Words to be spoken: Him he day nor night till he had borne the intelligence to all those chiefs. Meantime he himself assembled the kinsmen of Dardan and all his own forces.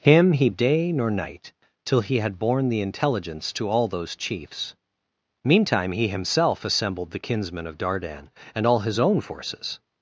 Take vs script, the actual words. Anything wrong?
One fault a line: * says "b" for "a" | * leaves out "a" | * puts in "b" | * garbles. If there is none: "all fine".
all fine